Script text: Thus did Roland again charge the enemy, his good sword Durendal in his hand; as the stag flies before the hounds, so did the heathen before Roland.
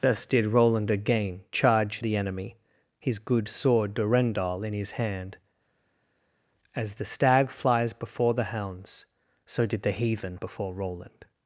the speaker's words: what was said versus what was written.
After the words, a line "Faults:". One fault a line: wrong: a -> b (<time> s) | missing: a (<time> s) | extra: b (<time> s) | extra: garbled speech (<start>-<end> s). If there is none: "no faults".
Thus did Roland again charge the enemy, his good sword Durendal in his hand; as the stag flies before the hounds, so did the heathen before Roland.
Faults:
no faults